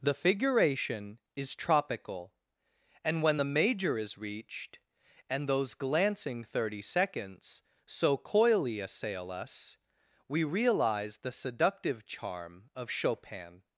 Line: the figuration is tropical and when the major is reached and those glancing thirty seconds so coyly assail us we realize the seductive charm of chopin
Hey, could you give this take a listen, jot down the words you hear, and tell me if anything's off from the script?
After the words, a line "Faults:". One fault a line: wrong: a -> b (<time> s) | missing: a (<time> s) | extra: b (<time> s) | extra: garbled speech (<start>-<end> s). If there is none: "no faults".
the figuration is tropical and when the major is reached and those glancing thirty seconds so coyly assail us we realize the seductive charm of chopin
Faults:
no faults